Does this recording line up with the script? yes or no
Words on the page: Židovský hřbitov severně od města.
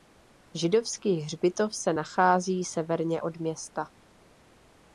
no